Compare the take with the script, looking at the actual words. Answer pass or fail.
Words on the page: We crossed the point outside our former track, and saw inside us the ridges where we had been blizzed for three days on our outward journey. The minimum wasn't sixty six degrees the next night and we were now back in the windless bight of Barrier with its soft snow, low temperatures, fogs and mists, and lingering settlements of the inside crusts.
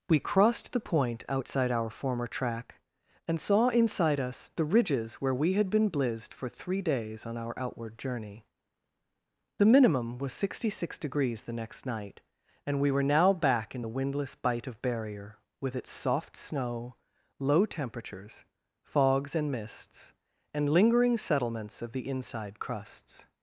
fail